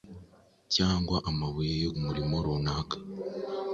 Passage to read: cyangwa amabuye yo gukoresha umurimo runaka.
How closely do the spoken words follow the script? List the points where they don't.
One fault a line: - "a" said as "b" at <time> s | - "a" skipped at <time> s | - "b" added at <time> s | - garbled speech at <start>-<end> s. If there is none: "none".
- "gukoresha" skipped at 1.9 s